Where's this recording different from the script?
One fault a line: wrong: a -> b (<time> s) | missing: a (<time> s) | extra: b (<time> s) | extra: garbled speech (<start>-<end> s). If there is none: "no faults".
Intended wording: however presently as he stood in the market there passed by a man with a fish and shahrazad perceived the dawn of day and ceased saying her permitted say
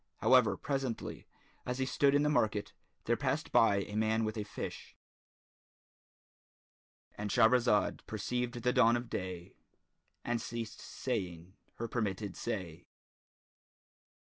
no faults